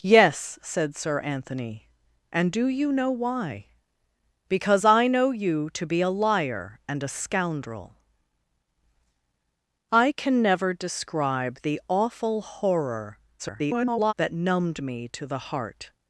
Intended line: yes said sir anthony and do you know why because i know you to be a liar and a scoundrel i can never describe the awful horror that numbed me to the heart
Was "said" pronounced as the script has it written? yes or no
yes